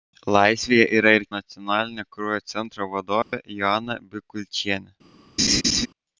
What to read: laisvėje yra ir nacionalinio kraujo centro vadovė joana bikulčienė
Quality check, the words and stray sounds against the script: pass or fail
fail